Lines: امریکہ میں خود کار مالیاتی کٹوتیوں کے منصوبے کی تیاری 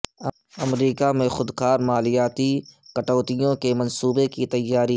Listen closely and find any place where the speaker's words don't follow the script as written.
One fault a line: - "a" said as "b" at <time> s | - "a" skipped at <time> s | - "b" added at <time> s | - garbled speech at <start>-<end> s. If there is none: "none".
none